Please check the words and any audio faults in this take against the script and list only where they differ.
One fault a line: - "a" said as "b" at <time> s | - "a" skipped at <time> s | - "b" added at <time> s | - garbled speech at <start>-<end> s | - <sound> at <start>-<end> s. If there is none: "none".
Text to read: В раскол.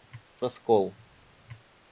none